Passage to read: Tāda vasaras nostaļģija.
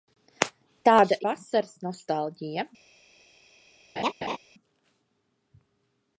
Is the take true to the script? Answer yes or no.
yes